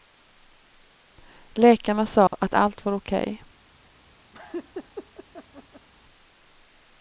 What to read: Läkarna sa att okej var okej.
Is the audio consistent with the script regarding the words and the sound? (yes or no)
no